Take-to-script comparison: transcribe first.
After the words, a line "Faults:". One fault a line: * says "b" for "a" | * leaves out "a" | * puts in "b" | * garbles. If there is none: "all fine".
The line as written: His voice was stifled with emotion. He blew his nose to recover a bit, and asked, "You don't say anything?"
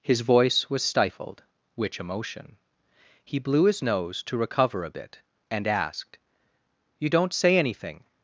His voice was stifled which emotion. He blew his nose to recover a bit, and asked, "You don't say anything?"
Faults:
* says "which" for "with"